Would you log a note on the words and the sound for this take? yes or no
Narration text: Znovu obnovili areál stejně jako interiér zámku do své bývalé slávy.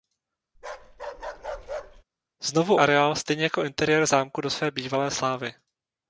yes